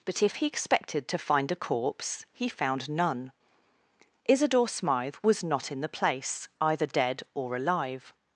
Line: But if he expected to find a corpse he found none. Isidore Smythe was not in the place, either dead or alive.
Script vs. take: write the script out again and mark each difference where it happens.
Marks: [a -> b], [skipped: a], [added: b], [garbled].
But if he expected to find a corpse he found none. Isidore Smythe was not in the place, either dead or alive.